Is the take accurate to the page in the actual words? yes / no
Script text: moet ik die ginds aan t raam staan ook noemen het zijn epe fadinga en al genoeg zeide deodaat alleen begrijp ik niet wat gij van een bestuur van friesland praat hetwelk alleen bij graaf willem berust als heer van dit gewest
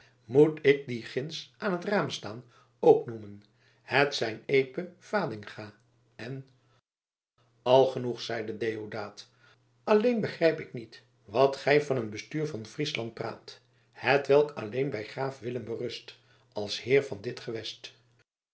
yes